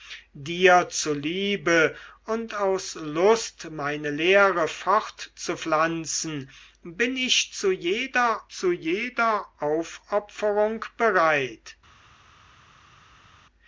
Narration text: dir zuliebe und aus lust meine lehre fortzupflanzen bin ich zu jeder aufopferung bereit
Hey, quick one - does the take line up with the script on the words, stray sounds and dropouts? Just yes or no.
no